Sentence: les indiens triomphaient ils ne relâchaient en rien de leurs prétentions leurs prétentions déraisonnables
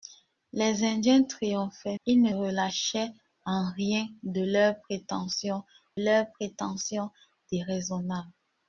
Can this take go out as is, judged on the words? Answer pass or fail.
pass